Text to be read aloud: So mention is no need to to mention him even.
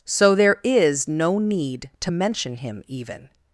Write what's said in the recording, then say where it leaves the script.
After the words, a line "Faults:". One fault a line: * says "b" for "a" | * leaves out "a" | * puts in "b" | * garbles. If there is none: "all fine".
So there is no need to mention him even.
Faults:
* says "there" for "mention"
* leaves out "to"